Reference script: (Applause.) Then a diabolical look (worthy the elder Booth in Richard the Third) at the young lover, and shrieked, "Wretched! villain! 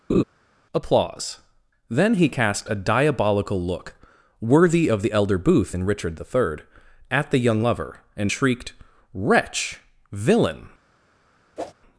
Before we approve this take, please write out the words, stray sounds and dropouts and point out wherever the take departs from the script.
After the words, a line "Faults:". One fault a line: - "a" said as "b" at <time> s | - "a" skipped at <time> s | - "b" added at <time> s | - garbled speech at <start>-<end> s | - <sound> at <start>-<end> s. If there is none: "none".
(Applause.) Then he cast a diabolical look (worthy of the elder Booth in Richard the Third) at the young lover, and shrieked, "Wretch! villain!
Faults:
- laugh at 0.1-0.2 s
- "he cast" added at 2.1 s
- "of" added at 4.9 s
- "Wretched" said as "Wretch" at 9.1 s
- whoosh at 11.6-11.7 s